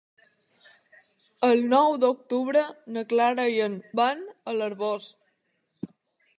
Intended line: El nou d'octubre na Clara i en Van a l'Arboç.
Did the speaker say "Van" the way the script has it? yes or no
yes